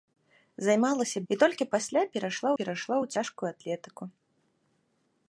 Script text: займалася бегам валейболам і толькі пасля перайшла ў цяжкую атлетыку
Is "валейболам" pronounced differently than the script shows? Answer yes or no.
yes